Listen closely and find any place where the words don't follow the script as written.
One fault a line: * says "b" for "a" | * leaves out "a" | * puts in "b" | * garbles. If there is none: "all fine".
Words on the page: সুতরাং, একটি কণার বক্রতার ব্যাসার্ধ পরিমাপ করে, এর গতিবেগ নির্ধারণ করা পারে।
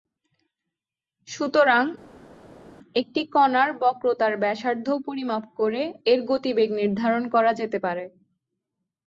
* puts in "যেতে"